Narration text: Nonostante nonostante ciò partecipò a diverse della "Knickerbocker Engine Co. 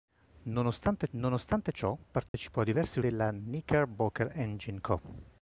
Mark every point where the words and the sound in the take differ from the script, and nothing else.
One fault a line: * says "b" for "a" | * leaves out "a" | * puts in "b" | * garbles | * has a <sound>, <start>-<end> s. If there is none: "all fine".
* has a dropout, 2.3-2.3 s